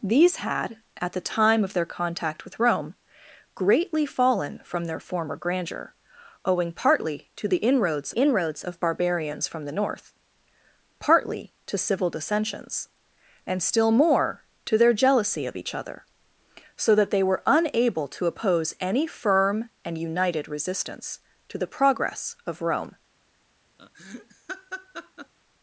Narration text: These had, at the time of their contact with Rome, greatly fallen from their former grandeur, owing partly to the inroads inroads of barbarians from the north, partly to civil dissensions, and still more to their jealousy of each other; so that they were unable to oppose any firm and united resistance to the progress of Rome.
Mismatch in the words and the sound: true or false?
true